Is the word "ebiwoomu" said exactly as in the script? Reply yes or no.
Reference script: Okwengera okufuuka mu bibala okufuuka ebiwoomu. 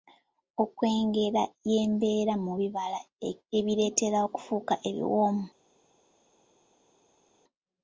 yes